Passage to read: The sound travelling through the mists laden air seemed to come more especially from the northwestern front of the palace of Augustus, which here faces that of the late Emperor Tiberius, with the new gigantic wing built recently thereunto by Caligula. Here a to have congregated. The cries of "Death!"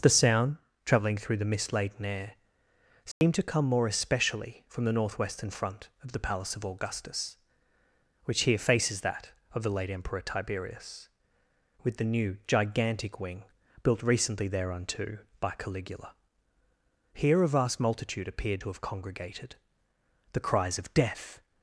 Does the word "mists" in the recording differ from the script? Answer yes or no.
yes